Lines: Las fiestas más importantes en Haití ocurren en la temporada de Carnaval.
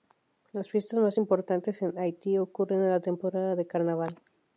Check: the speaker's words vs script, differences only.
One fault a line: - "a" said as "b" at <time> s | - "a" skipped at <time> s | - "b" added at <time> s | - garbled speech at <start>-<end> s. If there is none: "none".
none